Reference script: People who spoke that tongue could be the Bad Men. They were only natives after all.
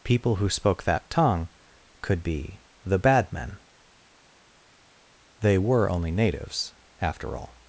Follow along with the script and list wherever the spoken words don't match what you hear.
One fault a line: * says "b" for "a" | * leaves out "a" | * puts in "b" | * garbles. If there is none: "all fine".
all fine